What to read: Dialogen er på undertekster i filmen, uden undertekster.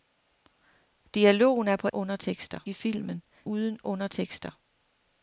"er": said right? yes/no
yes